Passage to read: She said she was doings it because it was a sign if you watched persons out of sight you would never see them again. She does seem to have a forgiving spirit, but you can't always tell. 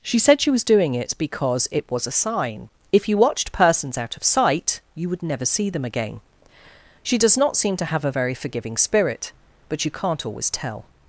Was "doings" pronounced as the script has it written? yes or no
no